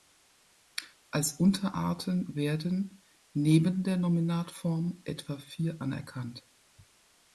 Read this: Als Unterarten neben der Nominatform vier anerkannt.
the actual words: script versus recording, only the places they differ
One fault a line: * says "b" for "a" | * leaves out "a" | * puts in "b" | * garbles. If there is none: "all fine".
* puts in "werden"
* puts in "etwa"